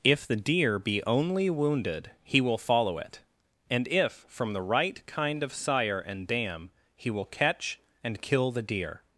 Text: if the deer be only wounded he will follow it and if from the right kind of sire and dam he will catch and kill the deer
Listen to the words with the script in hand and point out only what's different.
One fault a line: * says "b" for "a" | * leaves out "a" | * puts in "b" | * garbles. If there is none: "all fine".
all fine